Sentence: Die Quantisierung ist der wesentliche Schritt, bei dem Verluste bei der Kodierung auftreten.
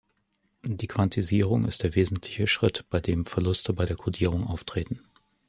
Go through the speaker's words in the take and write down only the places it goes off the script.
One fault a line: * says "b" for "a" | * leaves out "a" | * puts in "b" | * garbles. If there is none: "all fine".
all fine